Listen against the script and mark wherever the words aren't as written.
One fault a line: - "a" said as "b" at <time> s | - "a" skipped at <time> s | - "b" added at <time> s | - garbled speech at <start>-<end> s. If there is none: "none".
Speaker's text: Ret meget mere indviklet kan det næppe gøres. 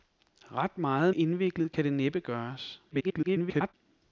- "mere" skipped at 1.1 s
- garbled speech at 2.9-3.7 s